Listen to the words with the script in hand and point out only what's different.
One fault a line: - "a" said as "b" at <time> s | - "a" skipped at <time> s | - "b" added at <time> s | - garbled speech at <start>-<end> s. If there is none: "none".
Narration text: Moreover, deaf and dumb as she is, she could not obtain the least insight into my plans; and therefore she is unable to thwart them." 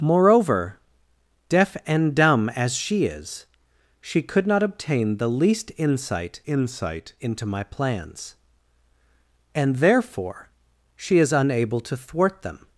- "insight" added at 6.5 s